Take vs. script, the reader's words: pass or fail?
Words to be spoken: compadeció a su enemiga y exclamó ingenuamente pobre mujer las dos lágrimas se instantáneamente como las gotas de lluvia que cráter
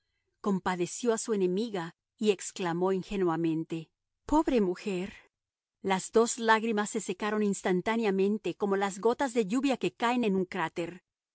fail